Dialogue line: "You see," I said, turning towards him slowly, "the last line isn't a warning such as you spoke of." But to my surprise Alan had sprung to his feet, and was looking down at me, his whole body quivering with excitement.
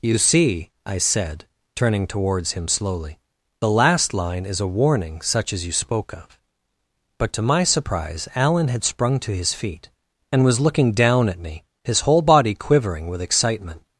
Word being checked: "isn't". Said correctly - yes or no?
no